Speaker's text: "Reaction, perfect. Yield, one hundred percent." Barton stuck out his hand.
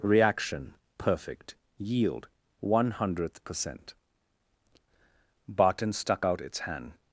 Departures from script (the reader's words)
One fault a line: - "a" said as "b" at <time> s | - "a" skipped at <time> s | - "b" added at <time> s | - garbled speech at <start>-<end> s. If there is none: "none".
- "hundred" said as "hundredth" at 2.9 s
- "his" said as "its" at 6.4 s